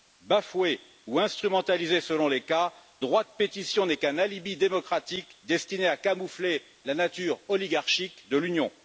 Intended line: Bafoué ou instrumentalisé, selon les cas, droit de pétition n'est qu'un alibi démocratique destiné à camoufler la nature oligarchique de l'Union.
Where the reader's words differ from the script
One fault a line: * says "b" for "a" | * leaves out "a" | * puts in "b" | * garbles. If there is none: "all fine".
all fine